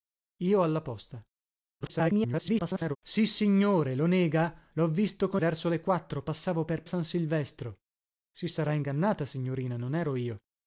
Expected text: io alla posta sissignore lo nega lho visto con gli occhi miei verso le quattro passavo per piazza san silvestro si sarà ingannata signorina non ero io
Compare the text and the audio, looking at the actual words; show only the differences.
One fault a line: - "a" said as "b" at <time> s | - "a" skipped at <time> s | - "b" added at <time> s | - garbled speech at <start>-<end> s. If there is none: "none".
- garbled speech at 1.8-3.0 s
- "gli occhi miei" skipped at 5.4 s
- "piazza" skipped at 6.8 s